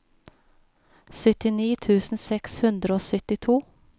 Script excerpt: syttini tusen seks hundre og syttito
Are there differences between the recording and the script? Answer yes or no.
no